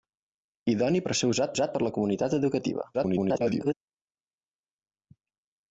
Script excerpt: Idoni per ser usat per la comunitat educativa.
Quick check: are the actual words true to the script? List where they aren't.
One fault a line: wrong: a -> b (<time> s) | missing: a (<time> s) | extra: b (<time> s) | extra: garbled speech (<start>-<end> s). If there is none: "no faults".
extra: usat (1.5 s)
extra: garbled speech (2.9-3.7 s)